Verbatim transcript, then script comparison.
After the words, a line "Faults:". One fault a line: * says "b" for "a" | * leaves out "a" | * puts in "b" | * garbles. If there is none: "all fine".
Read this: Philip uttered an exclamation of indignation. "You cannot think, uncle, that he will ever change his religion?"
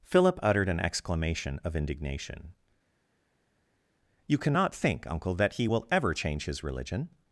Philip uttered an exclamation of indignation. "You cannot think, uncle, that he will ever change his religion?"
Faults:
all fine